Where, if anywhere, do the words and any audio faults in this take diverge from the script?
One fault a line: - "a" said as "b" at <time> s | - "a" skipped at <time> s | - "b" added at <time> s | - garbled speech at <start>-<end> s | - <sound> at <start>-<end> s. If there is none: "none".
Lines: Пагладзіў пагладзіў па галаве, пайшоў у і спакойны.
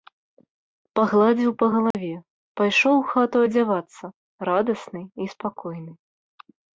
- "пагладзіў" skipped at 1.5 s
- dropout at 1.9-1.9 s
- "хату адзявацца радасны" added at 3.1 s